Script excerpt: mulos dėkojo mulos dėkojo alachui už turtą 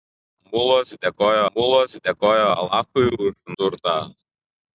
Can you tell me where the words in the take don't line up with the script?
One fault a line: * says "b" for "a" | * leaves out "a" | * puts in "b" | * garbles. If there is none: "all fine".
all fine